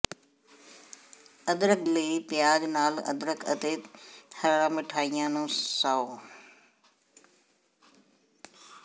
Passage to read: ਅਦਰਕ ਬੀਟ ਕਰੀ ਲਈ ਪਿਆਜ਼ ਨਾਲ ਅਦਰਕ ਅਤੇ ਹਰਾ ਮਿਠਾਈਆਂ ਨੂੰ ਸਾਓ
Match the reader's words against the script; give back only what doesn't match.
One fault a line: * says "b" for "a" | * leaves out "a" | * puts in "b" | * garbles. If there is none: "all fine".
* leaves out "ਬੀਟ ਕਰੀ"